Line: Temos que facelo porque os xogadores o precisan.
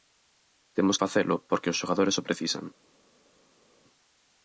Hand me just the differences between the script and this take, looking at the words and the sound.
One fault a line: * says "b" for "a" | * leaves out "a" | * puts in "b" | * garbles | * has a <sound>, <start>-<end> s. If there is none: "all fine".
* leaves out "que"